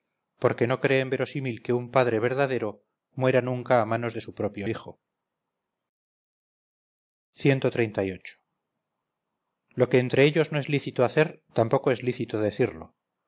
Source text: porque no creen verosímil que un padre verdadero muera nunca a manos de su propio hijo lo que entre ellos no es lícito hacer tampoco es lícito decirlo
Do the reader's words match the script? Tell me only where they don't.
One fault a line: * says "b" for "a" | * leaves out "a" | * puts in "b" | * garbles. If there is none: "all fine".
all fine